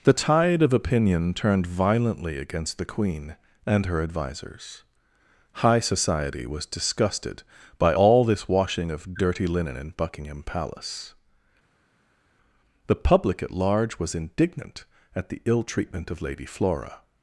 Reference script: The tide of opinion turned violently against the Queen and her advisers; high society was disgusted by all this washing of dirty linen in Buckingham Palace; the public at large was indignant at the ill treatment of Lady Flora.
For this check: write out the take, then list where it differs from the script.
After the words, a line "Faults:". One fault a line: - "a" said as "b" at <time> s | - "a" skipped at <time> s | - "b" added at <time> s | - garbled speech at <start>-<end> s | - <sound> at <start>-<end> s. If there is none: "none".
The tide of opinion turned violently against the Queen and her advisers; high society was disgusted by all this washing of dirty linen in Buckingham Palace; the public at large was indignant at the ill treatment of Lady Flora.
Faults:
none